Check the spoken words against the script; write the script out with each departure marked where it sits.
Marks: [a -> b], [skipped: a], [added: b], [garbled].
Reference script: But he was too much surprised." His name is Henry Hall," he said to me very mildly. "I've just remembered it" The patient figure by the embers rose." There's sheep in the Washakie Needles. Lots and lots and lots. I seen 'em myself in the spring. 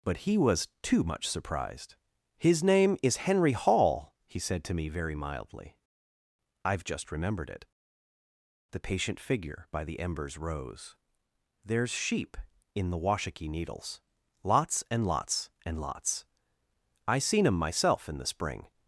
But he was too much surprised." His name is Henry Hall," he said to me very mildly. "I've just remembered it" The patient figure by the embers rose." There's sheep in the Washakie Needles. Lots and lots and lots. I seen 'em myself in the spring.